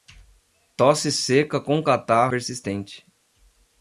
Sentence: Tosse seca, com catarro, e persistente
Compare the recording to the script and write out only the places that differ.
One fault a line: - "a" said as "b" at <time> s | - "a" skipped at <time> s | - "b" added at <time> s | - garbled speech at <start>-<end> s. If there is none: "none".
- "e" skipped at 2.3 s